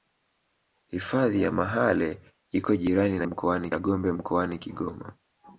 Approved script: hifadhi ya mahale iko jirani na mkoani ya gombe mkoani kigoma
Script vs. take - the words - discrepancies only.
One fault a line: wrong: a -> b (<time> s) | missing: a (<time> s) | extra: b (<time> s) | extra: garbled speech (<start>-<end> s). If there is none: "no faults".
no faults